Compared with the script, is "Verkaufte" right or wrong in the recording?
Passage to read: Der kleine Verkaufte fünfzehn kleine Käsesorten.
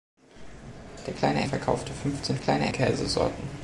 right